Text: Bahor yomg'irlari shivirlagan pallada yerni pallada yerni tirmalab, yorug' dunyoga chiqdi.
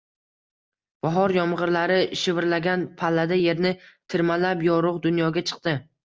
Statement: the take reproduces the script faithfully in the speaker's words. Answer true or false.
false